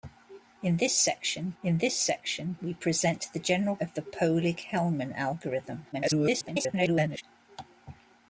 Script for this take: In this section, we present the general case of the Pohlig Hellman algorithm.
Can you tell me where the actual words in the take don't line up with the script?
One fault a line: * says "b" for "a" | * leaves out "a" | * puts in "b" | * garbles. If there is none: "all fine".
* puts in "in this section"
* leaves out "case"
* garbles